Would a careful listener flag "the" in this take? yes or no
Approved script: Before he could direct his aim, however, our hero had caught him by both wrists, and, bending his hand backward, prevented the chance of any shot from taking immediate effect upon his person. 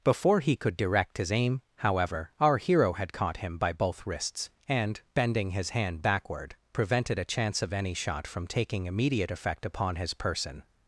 yes